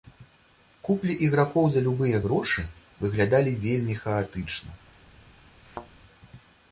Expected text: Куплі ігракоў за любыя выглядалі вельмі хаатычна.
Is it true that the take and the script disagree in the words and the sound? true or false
true